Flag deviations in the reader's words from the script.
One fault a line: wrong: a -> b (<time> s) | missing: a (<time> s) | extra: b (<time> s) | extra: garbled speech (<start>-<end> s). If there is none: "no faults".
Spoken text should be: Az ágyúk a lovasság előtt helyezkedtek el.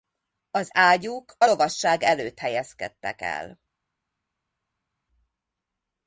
no faults